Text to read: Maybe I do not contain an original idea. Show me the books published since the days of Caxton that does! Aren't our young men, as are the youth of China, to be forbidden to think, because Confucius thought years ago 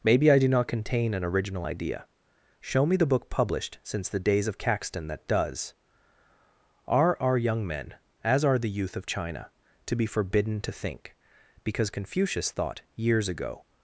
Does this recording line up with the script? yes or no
no